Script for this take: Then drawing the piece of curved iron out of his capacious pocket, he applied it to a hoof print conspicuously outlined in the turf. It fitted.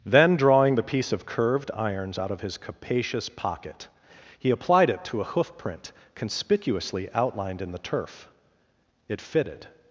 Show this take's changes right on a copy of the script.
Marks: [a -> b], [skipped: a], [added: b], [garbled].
Then drawing the piece of curved [iron -> irons] out of his capacious pocket, he applied it to a hoof print conspicuously outlined in the turf. It fitted.